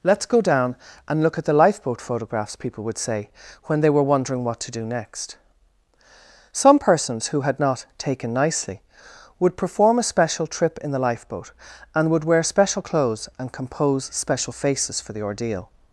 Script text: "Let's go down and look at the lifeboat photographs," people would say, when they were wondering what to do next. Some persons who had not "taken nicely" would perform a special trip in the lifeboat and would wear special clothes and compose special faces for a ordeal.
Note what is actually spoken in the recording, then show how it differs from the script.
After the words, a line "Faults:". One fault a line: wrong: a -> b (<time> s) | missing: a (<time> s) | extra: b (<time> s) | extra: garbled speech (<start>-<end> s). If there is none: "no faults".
"Let's go down and look at the lifeboat photographs," people would say, when they were wondering what to do next. Some persons who had not "taken nicely" would perform a special trip in the lifeboat and would wear special clothes and compose special faces for the ordeal.
Faults:
wrong: a -> the (15.1 s)